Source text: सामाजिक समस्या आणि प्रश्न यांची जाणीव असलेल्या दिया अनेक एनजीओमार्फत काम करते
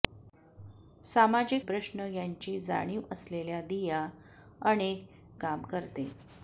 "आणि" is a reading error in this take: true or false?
true